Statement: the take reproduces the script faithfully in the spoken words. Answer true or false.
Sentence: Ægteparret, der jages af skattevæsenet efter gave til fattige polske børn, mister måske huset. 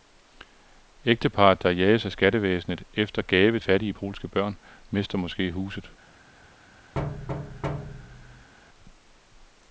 false